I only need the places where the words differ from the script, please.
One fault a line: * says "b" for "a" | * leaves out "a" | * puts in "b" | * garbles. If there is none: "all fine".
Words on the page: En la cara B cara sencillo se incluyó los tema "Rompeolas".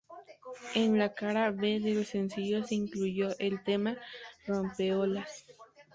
* says "del" for "cara"
* says "el" for "los"